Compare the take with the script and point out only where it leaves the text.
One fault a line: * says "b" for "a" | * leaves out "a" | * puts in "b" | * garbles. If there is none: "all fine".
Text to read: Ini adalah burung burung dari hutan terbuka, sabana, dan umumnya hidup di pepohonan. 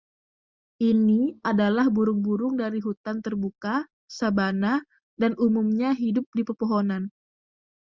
all fine